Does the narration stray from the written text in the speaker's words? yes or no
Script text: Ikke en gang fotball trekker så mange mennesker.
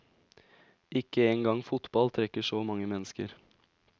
no